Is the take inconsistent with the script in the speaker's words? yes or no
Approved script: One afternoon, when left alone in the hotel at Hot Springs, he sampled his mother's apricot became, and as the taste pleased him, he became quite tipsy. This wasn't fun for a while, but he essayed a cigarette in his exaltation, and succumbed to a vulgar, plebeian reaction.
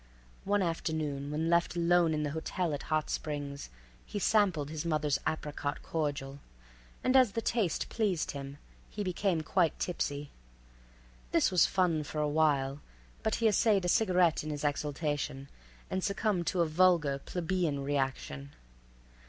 yes